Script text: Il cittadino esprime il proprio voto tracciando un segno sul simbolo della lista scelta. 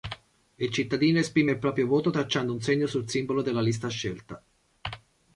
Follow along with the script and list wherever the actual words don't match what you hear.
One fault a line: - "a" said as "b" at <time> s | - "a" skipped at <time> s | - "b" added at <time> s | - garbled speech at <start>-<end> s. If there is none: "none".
none